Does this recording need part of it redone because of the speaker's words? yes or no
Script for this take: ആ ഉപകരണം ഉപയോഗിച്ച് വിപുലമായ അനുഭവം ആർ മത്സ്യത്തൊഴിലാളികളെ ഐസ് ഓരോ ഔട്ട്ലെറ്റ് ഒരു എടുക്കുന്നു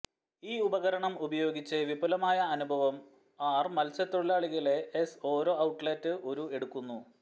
yes